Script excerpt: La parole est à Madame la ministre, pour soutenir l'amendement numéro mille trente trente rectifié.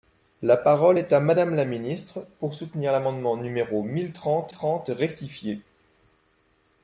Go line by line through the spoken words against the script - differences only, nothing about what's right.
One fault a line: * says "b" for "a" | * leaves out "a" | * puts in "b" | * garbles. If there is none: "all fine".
all fine